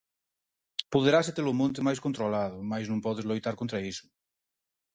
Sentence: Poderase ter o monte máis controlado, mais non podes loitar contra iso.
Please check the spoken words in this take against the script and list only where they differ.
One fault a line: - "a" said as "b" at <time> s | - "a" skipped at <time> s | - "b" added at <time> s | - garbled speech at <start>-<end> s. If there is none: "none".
none